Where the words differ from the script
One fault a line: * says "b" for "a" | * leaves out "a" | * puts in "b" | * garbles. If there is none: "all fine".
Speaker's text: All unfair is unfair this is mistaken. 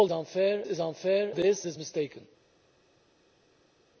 all fine